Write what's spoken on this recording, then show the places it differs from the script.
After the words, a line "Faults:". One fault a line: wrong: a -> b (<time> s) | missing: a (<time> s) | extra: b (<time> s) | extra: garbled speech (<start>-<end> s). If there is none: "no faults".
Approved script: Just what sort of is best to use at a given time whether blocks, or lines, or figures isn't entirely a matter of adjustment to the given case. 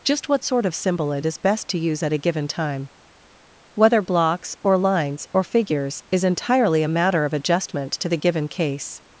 Just what sort of symbol it is best to use at a given time whether blocks, or lines, or figures is entirely a matter of adjustment to the given case.
Faults:
extra: symbol it (0.8 s)
wrong: isn't -> is (6.1 s)